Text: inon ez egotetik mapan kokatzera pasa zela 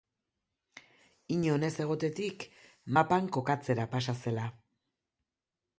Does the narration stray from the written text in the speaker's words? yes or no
no